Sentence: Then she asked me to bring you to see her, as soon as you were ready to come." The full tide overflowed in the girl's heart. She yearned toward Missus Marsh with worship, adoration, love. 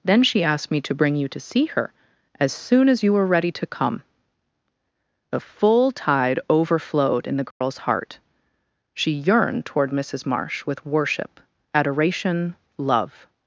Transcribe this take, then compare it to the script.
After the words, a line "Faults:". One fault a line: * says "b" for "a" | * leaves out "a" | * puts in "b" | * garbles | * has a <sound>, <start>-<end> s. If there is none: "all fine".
Then she asked me to bring you to see her, as soon as you were ready to come." The full tide overflowed in the girl's heart. She yearned toward Missus Marsh with worship, adoration, love.
Faults:
* has a dropout, 7.5-7.6 s